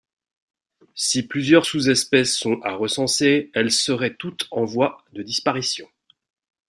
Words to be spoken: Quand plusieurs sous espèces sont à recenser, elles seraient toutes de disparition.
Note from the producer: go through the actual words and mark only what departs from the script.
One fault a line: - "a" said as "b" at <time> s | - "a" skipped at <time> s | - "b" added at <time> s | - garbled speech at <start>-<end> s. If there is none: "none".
- "Quand" said as "Si" at 0.9 s
- "en voie" added at 4.5 s